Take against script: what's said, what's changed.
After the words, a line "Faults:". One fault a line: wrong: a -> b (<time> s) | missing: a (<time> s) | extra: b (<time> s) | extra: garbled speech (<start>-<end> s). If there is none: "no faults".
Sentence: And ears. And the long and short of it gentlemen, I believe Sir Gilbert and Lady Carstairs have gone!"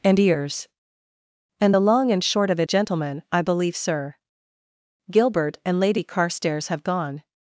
And ears. And the long and short of it gentlemen, I believe Sir Gilbert and Lady Carstairs have gone!"
Faults:
no faults